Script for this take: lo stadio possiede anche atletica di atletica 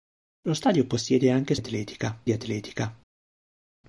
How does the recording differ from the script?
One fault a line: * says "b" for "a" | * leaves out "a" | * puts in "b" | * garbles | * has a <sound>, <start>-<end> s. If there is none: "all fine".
all fine